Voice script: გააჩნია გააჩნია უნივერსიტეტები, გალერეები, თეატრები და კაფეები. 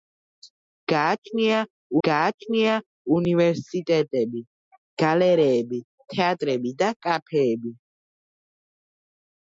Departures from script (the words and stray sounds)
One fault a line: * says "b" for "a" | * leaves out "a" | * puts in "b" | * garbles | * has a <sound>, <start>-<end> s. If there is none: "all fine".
all fine